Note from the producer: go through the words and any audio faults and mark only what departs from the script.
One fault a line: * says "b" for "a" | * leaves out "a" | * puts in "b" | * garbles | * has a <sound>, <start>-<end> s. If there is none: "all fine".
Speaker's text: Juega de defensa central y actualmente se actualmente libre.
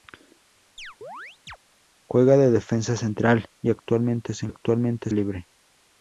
* has a chirp, 0.8-1.6 s